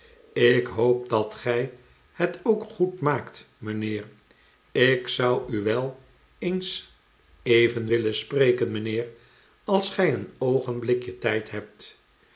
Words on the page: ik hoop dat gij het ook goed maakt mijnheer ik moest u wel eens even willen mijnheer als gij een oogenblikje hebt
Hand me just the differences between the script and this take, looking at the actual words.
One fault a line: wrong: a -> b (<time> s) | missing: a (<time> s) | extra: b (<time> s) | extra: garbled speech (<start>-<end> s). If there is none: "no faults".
wrong: moest -> zou (5.1 s)
extra: spreken (8.1 s)
extra: tijd (11.2 s)